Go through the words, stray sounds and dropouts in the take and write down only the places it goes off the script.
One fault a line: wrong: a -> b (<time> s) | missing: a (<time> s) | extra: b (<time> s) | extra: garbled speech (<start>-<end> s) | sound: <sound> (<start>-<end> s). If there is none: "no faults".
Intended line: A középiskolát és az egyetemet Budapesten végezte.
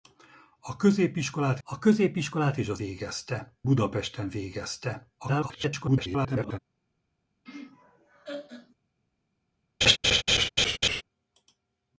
extra: a középiskolát (1.6 s)
wrong: egyetemet -> végezte (2.7 s)
extra: garbled speech (5.2-6.6 s)
sound: laugh (7.5-8.8 s)
sound: laugh (9.8-11.0 s)